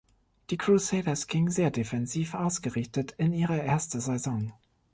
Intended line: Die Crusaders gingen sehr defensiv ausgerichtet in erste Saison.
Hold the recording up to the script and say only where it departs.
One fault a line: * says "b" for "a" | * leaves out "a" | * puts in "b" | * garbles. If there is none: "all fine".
* puts in "ihre"